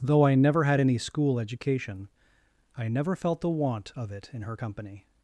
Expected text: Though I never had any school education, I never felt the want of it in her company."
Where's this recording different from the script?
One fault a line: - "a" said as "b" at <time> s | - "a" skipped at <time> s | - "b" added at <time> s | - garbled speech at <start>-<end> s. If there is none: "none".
none